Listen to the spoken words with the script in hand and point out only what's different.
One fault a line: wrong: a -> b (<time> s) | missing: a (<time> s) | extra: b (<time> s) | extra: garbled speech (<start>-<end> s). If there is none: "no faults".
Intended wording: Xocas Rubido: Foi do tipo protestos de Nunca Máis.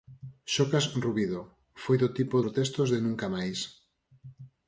no faults